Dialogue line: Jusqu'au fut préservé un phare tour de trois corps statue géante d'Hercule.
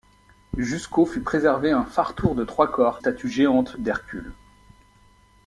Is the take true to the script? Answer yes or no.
yes